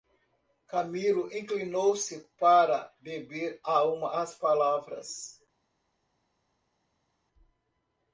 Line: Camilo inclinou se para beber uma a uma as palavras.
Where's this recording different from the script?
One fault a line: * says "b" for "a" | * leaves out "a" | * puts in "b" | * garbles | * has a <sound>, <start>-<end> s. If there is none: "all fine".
* leaves out "uma"